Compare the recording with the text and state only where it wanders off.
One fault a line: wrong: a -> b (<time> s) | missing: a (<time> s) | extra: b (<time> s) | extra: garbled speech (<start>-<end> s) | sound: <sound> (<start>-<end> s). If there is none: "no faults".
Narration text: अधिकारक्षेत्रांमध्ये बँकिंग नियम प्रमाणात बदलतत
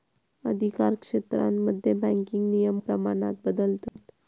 sound: dropout (3.9-4.0 s)